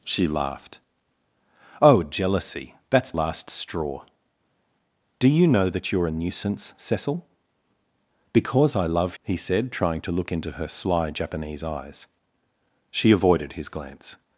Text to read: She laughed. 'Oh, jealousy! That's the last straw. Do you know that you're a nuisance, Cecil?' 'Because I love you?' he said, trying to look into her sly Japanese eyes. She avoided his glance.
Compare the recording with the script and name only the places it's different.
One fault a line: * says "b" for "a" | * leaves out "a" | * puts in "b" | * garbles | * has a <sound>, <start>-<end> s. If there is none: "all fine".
* leaves out "the"
* leaves out "you"